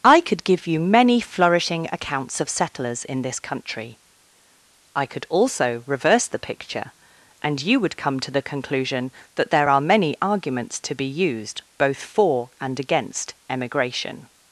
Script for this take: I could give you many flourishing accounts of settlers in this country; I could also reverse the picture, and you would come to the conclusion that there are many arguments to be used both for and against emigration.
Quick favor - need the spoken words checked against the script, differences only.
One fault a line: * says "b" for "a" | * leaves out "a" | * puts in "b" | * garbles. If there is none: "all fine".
all fine